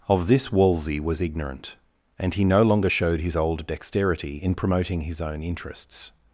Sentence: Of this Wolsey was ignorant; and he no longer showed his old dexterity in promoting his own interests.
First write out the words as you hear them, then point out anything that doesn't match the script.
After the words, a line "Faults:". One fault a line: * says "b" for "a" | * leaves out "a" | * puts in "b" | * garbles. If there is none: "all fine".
Of this Wolsey was ignorant; and he no longer showed his old dexterity in promoting his own interests.
Faults:
all fine